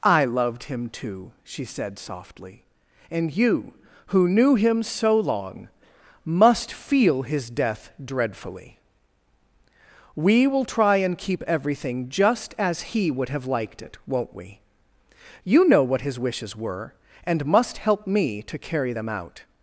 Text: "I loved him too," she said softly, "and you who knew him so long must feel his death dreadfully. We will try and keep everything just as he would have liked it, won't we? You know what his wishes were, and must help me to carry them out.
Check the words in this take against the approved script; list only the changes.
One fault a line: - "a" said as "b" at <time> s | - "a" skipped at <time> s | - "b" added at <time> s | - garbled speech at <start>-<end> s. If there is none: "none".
none